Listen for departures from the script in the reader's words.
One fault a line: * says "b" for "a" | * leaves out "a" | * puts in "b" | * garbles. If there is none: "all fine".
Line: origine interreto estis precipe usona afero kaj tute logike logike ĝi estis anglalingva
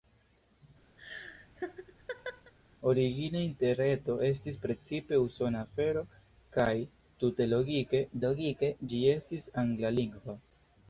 all fine